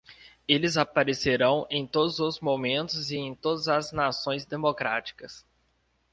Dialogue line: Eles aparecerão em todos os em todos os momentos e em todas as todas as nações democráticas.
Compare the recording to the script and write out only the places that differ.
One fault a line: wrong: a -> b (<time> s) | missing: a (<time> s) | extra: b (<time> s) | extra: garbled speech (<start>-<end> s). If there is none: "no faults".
missing: em todos os (2.4 s)
missing: todas as (3.9 s)